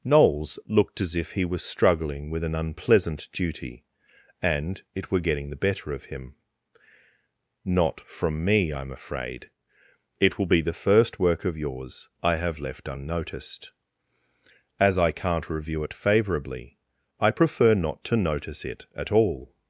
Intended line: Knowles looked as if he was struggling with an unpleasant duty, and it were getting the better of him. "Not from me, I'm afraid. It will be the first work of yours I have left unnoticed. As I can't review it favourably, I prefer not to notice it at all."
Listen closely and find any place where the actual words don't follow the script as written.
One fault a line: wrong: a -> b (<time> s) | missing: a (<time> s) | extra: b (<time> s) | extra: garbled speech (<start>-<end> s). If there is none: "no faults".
no faults